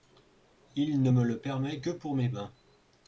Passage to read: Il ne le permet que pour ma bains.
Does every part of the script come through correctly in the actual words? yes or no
no